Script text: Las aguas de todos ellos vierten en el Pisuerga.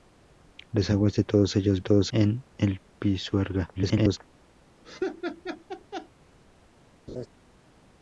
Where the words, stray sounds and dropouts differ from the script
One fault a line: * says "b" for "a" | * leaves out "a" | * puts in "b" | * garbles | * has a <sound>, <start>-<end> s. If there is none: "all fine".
* says "todos" for "vierten"
* garbles
* has a laugh, 4.8-6.1 s
* has a laugh, 7.1-7.3 s